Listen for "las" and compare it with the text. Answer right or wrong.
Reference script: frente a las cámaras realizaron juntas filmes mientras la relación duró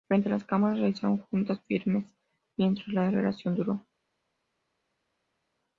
right